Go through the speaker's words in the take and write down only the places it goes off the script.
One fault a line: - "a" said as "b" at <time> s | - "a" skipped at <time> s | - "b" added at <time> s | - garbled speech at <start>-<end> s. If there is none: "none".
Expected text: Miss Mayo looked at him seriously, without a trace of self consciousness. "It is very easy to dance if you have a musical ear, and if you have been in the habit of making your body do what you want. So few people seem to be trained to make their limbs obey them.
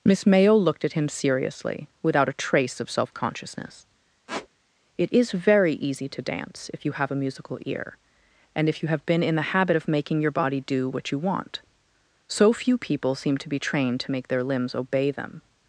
none